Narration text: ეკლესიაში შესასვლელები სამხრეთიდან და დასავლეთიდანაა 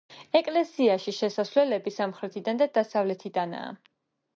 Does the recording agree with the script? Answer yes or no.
yes